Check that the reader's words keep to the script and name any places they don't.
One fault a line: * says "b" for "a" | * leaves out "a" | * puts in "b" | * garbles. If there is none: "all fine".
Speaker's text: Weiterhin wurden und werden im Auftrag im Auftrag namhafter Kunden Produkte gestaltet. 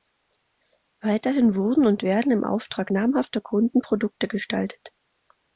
* leaves out "im Auftrag"